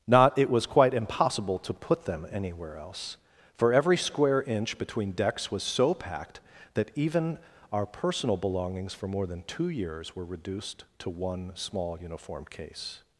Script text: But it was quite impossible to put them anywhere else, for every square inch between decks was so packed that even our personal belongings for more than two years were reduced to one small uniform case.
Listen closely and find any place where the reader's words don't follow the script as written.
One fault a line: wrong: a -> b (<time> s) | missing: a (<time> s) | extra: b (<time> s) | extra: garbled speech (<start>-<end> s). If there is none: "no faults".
wrong: But -> Not (0.1 s)